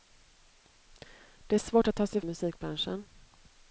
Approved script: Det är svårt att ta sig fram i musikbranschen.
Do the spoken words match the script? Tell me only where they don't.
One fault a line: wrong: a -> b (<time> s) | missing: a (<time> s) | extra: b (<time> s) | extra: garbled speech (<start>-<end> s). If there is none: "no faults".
missing: fram (2.2 s)